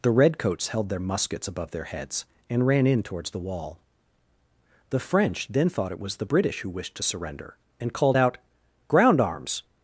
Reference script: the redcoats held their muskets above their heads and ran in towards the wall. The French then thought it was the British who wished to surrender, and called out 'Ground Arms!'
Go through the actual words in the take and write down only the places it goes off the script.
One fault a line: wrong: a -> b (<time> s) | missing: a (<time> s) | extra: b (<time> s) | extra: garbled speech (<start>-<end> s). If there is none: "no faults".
no faults